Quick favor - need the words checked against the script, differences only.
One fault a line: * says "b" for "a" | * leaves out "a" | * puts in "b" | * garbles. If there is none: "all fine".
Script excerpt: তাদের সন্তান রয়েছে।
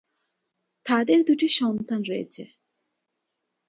* puts in "দুটি"